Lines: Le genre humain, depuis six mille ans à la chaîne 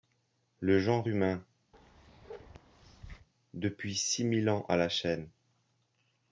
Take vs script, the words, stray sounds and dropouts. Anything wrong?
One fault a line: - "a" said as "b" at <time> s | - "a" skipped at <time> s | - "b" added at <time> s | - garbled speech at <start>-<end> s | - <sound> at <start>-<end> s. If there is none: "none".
- bark at 1.7-3.3 s